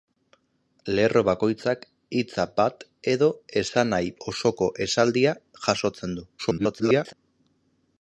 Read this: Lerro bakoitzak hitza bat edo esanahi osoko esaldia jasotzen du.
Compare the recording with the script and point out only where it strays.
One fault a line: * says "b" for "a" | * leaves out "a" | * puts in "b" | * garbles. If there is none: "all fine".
* garbles